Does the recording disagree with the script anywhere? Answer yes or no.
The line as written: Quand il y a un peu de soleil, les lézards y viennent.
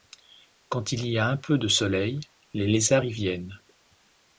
no